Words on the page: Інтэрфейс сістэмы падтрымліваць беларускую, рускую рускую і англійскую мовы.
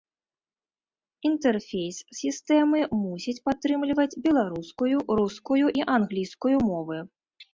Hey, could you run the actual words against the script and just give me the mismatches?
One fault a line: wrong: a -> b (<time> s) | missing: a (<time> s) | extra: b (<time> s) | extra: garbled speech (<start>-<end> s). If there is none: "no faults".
extra: мусіць (3.0 s)
missing: рускую (5.7 s)